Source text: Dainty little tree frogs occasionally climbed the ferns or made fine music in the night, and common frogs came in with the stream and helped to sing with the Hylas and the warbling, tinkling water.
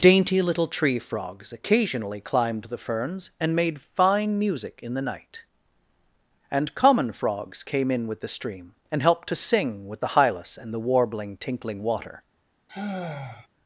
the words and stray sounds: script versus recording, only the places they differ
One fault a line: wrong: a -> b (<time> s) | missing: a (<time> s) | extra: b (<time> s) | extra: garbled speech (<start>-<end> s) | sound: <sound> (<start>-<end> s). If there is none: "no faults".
wrong: or -> and (3.4 s)
sound: sigh (12.7-13.5 s)